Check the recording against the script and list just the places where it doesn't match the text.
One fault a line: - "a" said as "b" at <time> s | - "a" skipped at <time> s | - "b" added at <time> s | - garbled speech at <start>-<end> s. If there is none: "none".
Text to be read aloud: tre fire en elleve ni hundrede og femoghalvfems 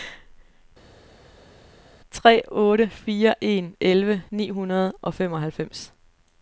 - "otte" added at 2.5 s